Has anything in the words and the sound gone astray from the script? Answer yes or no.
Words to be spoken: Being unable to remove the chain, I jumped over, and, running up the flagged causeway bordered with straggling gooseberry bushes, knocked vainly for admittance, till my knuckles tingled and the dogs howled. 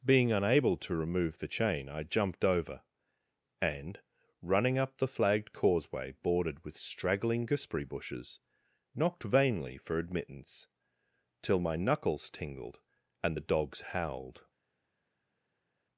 no